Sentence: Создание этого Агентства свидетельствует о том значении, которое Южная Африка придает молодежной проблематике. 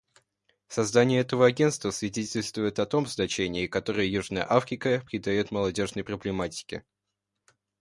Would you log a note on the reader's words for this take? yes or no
no